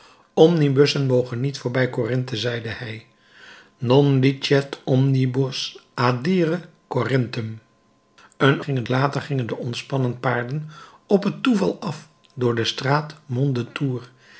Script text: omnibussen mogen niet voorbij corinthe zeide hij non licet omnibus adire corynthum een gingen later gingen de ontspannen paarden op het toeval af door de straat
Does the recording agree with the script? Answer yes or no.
yes